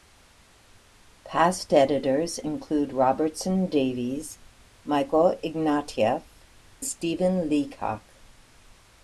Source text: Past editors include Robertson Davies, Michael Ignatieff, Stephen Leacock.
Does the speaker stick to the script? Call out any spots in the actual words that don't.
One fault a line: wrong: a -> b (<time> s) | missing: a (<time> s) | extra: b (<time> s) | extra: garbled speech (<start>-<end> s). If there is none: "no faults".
no faults